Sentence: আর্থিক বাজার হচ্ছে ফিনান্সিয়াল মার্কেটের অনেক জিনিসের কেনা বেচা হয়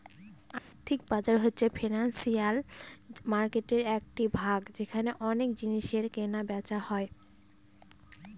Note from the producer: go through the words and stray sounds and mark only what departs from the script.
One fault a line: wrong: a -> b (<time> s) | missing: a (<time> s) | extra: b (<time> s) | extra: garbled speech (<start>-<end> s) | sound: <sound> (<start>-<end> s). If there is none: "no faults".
sound: dropout (0.6-0.7 s)
extra: একটি ভাগ যেখানে (4.0 s)